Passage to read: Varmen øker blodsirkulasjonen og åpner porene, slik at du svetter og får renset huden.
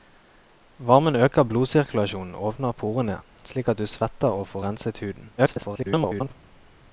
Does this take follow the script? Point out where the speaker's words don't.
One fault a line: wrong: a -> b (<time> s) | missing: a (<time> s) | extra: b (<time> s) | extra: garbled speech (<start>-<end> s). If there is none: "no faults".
extra: garbled speech (5.4-6.3 s)